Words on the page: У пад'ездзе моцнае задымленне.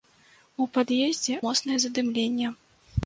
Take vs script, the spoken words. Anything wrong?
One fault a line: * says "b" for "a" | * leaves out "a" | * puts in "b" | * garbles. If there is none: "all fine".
all fine